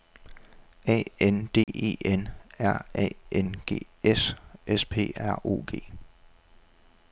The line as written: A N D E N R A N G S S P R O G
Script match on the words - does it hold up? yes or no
yes